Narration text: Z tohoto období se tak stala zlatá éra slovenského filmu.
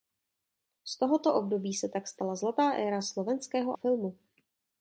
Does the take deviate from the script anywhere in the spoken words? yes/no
no